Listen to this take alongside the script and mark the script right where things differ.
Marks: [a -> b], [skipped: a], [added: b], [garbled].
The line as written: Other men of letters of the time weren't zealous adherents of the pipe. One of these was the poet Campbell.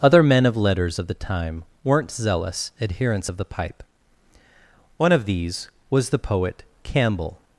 Other men of letters of the time weren't zealous adherents of the pipe. One of these was the poet Campbell.